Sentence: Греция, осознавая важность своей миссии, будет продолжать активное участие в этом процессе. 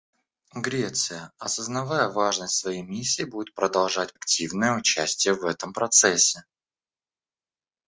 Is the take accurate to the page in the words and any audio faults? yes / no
yes